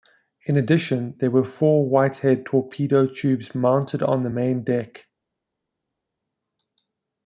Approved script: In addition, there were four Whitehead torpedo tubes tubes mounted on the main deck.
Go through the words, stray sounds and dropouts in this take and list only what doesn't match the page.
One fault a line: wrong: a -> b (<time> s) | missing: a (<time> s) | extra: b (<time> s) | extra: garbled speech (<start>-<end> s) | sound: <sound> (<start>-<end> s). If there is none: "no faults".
missing: tubes (3.5 s)